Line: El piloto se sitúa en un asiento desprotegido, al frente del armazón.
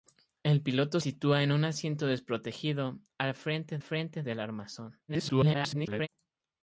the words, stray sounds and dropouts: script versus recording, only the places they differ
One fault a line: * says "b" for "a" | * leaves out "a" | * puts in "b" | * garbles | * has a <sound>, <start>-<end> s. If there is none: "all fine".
* leaves out "se"
* puts in "frente"
* garbles